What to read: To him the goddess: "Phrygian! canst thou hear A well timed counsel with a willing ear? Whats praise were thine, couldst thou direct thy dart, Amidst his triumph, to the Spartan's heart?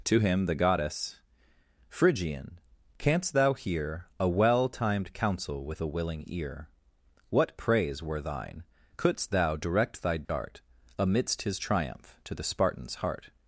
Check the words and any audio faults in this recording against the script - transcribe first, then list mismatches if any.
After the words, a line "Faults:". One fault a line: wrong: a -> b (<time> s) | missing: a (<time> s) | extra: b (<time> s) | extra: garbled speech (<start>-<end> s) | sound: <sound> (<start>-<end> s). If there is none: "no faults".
To him the goddess: "Phrygian! canst thou hear A well timed counsel with a willing ear? What praise were thine, couldst thou direct thy dart, Amidst his triumph, to the Spartan's heart?
Faults:
wrong: Whats -> What (7.3 s)
sound: dropout (10.2-10.3 s)